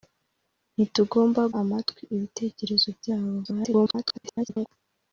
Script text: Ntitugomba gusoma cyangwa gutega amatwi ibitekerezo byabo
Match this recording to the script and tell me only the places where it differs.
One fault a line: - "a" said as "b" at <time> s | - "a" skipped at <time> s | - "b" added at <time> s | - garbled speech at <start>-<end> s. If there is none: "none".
- "gusoma cyangwa gutega" skipped at 1.4 s
- garbled speech at 3.4-4.7 s